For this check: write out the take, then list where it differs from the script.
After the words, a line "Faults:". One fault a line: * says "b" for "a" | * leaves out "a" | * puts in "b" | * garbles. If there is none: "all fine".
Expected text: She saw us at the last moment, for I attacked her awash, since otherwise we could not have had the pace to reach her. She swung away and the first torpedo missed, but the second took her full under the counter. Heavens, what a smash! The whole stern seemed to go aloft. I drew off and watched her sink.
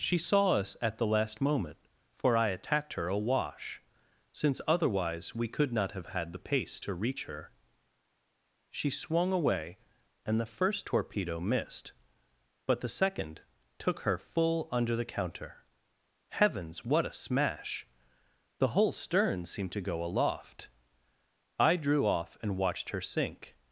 She saw us at the last moment, for I attacked her awash, since otherwise we could not have had the pace to reach her. She swung away and the first torpedo missed, but the second took her full under the counter. Heavens, what a smash! The whole stern seemed to go aloft. I drew off and watched her sink.
Faults:
all fine